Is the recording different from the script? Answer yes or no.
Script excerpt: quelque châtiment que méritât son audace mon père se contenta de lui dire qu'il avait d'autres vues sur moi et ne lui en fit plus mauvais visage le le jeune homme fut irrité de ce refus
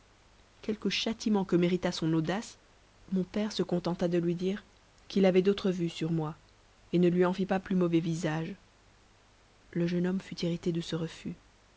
yes